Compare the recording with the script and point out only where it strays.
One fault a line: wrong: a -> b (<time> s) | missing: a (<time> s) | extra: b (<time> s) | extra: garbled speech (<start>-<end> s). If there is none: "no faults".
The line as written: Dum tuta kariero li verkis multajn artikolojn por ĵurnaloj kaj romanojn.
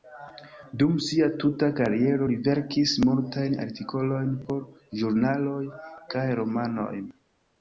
extra: sia (1.0 s)